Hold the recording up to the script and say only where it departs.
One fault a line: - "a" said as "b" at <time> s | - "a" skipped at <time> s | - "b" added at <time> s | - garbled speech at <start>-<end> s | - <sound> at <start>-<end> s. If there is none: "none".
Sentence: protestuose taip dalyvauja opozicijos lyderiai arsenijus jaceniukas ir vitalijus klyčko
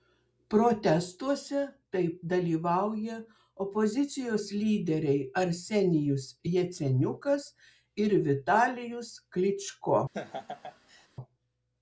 - laugh at 10.1-11.1 s